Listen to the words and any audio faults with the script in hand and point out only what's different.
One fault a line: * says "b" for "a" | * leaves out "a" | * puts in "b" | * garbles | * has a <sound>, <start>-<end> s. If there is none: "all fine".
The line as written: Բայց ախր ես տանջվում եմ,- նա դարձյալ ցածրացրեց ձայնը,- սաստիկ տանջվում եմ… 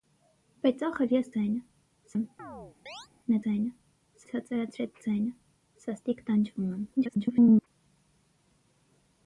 * says "ձայնը" for "տանջվում"
* has a chirp, 2.4-3.1 s
* says "ձայնը" for "դարձյալ"
* garbles